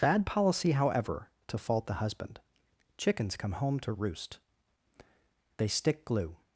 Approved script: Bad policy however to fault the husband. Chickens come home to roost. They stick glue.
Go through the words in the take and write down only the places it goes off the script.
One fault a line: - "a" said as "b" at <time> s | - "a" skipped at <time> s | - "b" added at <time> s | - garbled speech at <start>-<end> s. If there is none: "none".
none